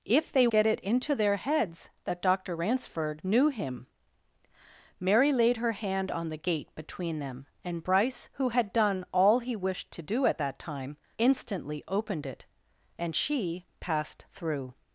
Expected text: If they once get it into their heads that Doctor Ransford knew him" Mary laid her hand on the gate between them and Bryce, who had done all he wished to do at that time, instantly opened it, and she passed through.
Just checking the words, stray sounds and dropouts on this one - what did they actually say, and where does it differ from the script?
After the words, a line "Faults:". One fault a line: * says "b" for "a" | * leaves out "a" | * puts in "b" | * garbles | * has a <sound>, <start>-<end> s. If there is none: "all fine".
If they get it into their heads that Doctor Ransford knew him" Mary laid her hand on the gate between them and Bryce, who had done all he wished to do at that time, instantly opened it, and she passed through.
Faults:
* leaves out "once"